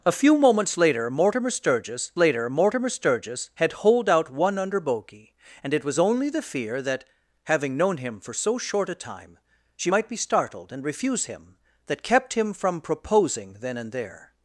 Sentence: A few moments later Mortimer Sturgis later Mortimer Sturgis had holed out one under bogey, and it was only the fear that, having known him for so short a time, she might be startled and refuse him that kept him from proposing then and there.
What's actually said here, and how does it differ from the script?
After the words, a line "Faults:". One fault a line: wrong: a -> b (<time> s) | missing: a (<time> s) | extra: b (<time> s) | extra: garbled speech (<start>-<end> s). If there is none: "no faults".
A few moments later Mortimer Sturgis later Mortimer Sturgis had holed out one under bogey, and it was only the fear that, having known him for so short a time, she might be startled and refuse him that kept him from proposing then and there.
Faults:
no faults